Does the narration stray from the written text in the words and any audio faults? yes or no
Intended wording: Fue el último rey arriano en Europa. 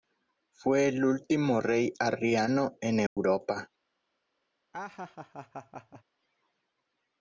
yes